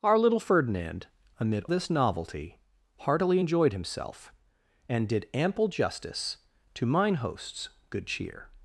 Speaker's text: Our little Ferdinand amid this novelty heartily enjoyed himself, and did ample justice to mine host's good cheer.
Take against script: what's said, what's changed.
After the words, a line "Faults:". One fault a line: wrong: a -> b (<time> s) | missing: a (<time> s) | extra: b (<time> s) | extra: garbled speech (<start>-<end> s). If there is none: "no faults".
Our little Ferdinand amid this novelty heartily enjoyed himself, and did ample justice to mine host's good cheer.
Faults:
no faults